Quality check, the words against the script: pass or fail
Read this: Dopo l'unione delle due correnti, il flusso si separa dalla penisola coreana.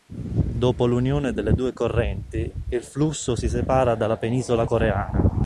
pass